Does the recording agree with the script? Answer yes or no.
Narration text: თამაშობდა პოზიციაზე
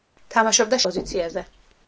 yes